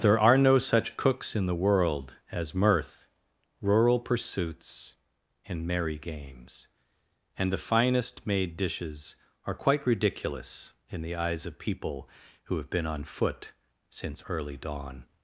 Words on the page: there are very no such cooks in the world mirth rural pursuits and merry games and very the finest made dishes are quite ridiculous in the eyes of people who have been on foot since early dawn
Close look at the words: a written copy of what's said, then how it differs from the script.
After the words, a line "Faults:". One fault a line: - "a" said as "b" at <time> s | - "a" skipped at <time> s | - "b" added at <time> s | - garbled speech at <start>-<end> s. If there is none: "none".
there are no such cooks in the world as mirth rural pursuits and merry games and the finest made dishes are quite ridiculous in the eyes of people who have been on foot since early dawn
Faults:
- "very" skipped at 0.3 s
- "as" added at 2.3 s
- "very" skipped at 7.5 s